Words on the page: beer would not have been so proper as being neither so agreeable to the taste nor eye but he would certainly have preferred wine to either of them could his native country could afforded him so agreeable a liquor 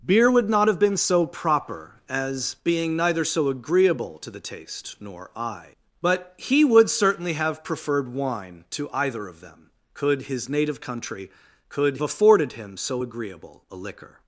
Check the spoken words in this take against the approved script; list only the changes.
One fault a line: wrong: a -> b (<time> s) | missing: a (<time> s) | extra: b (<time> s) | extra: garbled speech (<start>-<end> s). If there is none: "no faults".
no faults